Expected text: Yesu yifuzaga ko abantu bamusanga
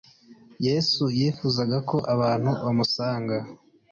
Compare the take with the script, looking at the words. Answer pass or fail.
pass